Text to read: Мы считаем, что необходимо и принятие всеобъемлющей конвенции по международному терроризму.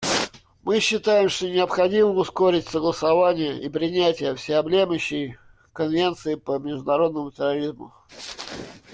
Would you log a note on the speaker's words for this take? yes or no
yes